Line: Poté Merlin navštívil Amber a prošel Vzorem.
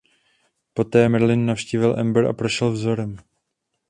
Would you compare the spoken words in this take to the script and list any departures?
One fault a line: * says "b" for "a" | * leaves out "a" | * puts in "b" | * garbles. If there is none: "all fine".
all fine